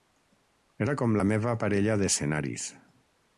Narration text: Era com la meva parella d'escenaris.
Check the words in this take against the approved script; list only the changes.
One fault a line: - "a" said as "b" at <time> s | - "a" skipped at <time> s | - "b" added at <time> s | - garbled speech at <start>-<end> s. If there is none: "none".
none